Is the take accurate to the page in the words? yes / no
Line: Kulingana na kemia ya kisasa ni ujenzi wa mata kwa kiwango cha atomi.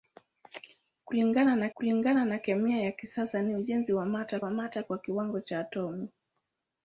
no